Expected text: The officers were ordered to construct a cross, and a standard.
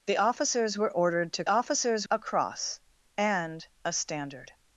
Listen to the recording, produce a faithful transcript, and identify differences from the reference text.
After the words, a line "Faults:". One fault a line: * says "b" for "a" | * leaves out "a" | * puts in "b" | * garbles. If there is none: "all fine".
The officers were ordered to officers a cross, and a standard.
Faults:
* says "officers" for "construct"